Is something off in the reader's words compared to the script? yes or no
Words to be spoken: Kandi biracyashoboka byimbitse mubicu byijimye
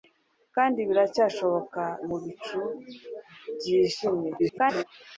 yes